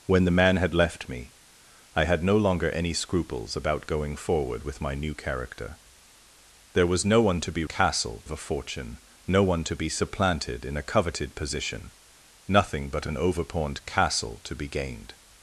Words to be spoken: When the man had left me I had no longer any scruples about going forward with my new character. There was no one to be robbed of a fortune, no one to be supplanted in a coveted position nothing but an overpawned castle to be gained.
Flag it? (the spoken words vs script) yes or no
yes